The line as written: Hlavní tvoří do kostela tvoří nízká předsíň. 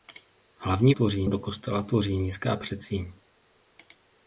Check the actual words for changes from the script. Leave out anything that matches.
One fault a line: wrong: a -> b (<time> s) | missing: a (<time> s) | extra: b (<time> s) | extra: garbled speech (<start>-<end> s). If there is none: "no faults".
no faults